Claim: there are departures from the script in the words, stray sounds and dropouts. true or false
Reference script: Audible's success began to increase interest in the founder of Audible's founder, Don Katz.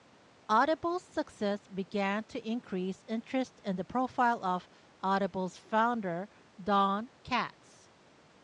true